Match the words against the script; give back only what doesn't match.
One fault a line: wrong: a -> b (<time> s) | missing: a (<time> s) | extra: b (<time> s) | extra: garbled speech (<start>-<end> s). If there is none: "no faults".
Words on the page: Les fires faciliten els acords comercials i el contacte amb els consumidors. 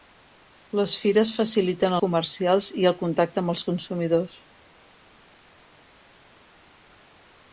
missing: els acords (2.0 s)